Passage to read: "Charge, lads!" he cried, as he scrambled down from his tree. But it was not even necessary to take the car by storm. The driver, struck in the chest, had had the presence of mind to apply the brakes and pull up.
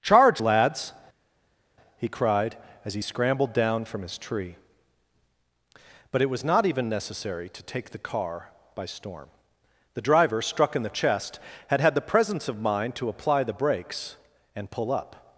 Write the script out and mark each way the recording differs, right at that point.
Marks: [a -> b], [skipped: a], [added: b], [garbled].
"Charge, lads!" he cried, as he scrambled down from his tree. But it was not even necessary to take the car by storm. The driver, struck in the chest, had had the presence of mind to apply the brakes and pull up.